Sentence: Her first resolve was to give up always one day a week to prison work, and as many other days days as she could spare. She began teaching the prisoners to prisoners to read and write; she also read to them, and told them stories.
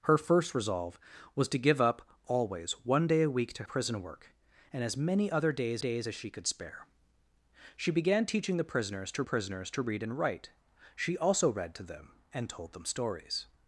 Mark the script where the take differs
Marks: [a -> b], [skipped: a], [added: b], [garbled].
Her first resolve was to give up always one day a week to prison work, and as many other days days as she could spare. She began teaching the prisoners to prisoners to read and write; she also read to them, and told them stories.